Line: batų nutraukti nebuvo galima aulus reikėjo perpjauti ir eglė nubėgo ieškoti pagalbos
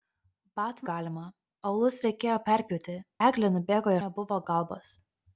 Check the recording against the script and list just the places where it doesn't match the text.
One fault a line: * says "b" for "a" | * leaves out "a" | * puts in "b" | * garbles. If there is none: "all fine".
* leaves out "nutraukti nebuvo"
* leaves out "ir"
* says "nebuvo" for "ieškoti"